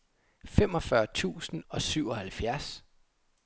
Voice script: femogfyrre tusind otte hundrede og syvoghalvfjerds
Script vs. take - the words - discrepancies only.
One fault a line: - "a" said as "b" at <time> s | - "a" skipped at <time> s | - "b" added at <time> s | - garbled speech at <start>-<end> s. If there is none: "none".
- "otte hundrede" skipped at 1.6 s